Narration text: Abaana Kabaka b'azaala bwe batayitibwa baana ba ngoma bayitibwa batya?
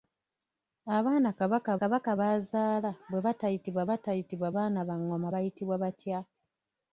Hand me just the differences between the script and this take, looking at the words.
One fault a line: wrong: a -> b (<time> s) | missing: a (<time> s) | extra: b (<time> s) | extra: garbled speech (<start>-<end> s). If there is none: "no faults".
extra: Kabaka (1.8 s)
extra: batayitibwa (3.9 s)